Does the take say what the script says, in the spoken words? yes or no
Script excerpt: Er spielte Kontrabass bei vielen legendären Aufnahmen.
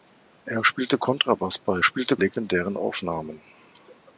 no